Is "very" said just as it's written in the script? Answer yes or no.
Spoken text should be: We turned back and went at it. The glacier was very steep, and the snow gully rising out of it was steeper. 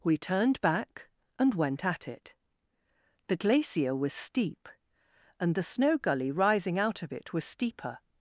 no